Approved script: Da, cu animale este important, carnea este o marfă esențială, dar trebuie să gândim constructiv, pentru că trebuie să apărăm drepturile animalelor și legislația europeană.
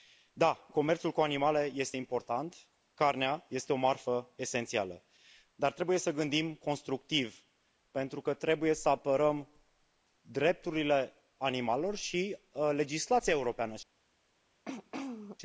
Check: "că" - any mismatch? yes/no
no